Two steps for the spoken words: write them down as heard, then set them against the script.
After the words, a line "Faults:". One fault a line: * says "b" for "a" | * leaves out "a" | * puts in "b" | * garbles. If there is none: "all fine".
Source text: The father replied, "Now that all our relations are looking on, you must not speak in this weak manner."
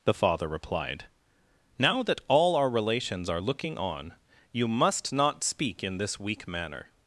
The father replied, "Now that all our relations are looking on, you must not speak in this weak manner."
Faults:
all fine